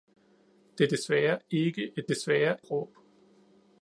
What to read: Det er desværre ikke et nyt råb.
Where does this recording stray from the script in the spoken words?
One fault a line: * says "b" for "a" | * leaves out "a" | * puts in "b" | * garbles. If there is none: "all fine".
* says "desværre" for "nyt"